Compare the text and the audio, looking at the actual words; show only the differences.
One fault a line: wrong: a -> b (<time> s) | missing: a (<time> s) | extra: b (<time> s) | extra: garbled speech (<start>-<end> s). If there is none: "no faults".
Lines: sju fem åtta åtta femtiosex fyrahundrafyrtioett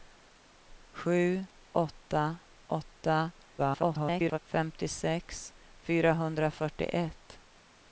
missing: fem (1.4 s)
extra: garbled speech (3.6-4.4 s)